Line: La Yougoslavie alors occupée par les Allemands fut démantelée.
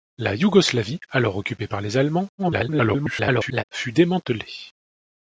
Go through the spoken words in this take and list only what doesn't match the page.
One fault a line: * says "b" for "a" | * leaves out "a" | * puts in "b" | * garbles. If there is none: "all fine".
* garbles